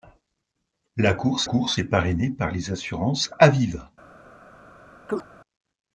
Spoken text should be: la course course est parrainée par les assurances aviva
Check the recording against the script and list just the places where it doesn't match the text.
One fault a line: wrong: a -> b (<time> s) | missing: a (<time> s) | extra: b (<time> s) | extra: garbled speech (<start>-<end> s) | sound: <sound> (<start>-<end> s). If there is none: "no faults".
sound: chirp (5.1-5.2 s)